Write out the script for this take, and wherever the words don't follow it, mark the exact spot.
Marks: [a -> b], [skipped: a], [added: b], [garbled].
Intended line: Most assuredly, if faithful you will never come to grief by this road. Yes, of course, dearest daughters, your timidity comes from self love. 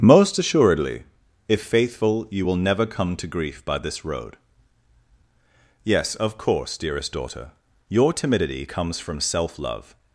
Most assuredly, if faithful you will never come to grief by this road. Yes, of course, dearest [daughters, -> daughter] your timidity comes from self love.